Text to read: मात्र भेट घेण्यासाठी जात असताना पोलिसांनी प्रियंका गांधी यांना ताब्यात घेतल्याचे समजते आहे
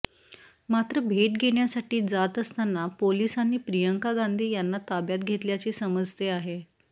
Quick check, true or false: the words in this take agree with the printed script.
true